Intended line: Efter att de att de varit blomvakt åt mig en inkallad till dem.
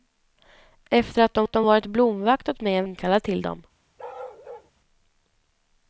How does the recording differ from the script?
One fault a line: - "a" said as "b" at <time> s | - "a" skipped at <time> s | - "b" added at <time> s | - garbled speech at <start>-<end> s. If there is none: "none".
none